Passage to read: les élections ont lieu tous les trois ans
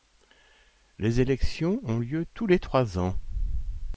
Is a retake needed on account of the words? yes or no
no